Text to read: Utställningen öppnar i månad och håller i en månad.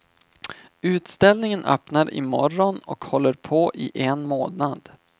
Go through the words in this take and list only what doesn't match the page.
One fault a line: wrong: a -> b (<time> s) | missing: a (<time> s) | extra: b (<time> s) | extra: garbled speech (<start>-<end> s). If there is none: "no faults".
wrong: månad -> morgon (2.2 s)
extra: på (3.3 s)